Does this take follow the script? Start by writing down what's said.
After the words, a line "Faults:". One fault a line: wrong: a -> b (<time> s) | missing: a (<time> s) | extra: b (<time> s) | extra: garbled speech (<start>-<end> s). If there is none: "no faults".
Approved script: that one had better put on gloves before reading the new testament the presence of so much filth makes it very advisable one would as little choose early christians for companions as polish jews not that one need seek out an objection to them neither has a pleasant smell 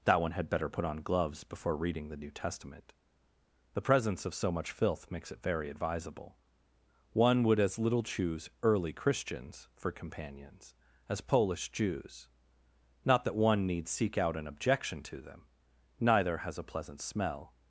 that one had better put on gloves before reading the new testament the presence of so much filth makes it very advisable one would as little choose early christians for companions as polish jews not that one need seek out an objection to them neither has a pleasant smell
Faults:
no faults